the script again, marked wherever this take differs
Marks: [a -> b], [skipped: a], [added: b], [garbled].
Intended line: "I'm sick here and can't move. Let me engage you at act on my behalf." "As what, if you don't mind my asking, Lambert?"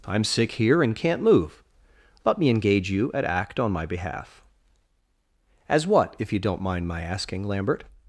"I'm sick here and can't move. Let me engage you at act on my behalf." "As what, if you don't mind my asking, Lambert?"